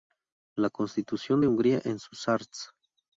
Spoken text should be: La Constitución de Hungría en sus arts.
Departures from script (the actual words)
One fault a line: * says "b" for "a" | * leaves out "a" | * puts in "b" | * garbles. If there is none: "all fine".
all fine